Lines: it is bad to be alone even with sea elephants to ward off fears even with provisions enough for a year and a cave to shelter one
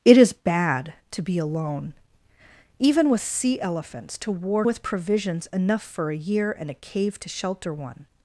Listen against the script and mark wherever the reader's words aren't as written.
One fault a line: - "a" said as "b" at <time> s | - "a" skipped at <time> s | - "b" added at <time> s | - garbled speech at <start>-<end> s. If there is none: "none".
- "off fears even" skipped at 4.7 s